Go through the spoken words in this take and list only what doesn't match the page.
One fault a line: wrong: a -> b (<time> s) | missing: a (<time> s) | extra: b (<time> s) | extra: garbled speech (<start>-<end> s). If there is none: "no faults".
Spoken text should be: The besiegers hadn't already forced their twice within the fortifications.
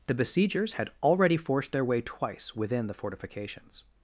wrong: hadn't -> had (0.7 s)
extra: way (1.9 s)